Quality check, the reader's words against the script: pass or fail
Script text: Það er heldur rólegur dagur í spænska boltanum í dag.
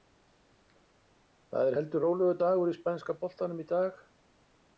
pass